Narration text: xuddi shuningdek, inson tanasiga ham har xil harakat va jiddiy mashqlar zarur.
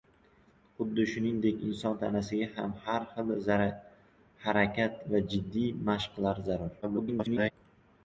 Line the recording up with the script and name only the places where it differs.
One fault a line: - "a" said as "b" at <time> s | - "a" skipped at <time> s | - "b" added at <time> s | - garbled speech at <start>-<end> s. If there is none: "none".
- garbled speech at 6.8-7.5 s